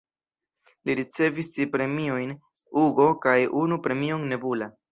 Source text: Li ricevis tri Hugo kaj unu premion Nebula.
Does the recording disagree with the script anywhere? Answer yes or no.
yes